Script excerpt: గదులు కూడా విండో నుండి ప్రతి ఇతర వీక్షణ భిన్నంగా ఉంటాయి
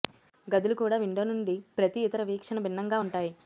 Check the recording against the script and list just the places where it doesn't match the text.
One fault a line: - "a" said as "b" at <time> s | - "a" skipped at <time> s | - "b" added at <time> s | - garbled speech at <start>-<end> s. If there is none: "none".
none